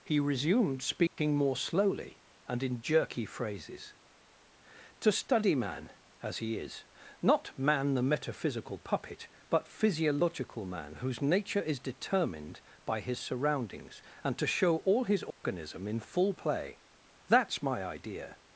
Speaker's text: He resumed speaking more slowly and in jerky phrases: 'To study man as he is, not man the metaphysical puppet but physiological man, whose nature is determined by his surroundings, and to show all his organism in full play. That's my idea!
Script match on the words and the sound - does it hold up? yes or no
no